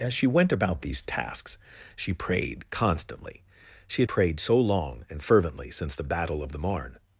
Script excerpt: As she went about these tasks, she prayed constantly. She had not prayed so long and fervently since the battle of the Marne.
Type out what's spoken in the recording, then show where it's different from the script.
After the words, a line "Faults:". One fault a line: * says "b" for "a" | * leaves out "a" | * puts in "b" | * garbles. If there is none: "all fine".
As she went about these tasks, she prayed constantly. She had prayed so long and fervently since the battle of the Marne.
Faults:
* leaves out "not"